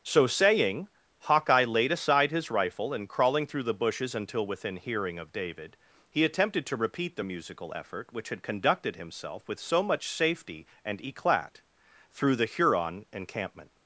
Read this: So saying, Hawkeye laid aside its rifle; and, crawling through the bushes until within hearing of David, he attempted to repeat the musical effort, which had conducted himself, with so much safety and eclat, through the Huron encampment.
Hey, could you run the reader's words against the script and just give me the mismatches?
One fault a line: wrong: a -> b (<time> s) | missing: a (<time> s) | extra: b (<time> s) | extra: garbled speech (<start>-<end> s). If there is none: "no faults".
wrong: its -> his (2.3 s)